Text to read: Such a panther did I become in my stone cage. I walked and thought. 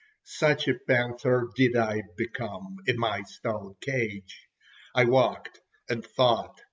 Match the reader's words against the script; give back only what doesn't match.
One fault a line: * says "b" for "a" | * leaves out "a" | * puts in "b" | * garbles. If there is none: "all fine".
all fine